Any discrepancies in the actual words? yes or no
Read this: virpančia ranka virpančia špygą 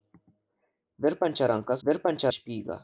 no